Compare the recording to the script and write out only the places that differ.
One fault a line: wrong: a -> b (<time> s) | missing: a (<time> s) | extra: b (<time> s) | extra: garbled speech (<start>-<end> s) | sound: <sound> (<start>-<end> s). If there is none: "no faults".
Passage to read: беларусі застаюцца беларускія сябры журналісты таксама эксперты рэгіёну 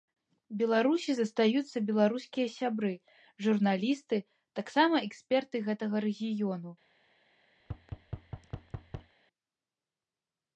extra: гэтага (5.7 s)
sound: thud (7.6-9.1 s)